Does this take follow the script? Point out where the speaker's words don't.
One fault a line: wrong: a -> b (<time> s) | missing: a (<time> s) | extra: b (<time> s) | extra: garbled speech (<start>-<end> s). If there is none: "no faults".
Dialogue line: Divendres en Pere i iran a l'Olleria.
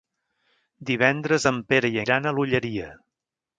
no faults